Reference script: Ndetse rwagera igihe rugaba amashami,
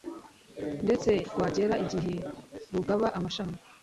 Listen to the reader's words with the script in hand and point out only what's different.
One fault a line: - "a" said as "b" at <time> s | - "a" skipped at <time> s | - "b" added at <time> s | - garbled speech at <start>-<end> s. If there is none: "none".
none